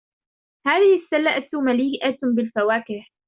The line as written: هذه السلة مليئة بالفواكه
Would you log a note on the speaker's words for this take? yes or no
no